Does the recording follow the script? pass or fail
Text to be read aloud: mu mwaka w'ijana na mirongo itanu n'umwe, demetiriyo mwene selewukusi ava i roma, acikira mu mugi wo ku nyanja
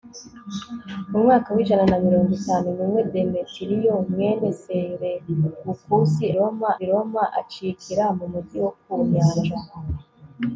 fail